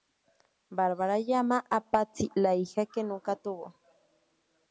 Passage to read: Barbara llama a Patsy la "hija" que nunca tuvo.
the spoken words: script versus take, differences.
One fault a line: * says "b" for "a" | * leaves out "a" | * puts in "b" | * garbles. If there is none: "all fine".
all fine